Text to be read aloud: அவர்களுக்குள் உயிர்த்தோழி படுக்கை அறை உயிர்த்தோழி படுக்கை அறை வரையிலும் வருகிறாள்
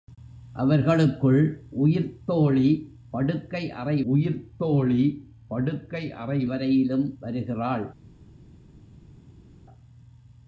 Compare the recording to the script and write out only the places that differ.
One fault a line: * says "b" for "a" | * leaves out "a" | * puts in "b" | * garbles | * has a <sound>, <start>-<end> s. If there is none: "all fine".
all fine